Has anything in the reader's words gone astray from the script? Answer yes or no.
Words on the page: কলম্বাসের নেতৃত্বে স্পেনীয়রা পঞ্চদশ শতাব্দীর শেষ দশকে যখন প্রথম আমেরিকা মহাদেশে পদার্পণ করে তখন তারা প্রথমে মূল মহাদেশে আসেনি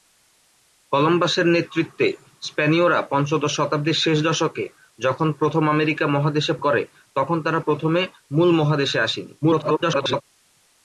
yes